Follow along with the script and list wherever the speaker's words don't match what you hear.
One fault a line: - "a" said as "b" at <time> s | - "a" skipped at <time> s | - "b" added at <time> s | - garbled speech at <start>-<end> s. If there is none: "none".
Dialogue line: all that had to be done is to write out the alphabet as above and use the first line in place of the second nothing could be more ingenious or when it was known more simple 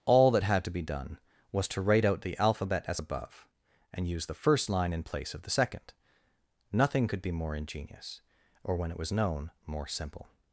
- "is" said as "was" at 1.5 s